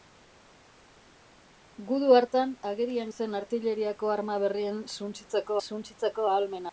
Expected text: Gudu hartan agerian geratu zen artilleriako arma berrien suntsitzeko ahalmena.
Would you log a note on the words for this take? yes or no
yes